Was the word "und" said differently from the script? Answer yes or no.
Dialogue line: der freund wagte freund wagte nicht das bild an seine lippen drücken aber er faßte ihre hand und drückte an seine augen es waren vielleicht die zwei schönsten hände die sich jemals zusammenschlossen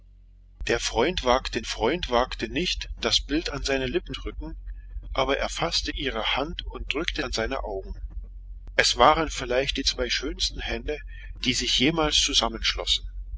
no